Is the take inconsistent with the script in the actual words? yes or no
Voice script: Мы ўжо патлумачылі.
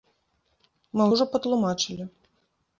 no